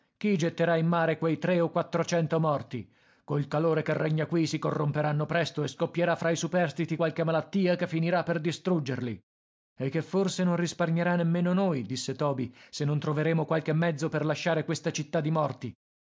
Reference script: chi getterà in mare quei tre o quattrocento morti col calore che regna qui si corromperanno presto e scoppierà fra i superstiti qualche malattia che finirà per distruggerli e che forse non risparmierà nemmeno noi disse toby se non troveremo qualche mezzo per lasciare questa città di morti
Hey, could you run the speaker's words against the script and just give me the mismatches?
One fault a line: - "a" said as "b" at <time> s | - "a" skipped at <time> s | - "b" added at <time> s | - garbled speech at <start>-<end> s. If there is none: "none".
none